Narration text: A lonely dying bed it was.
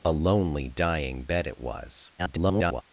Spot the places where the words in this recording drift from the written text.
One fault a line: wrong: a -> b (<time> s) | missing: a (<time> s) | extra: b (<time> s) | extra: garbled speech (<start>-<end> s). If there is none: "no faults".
extra: garbled speech (2.2-2.8 s)